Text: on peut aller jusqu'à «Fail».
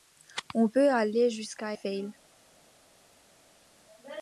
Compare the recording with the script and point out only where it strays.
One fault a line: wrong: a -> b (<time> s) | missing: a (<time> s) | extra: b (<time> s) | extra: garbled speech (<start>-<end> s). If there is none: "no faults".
no faults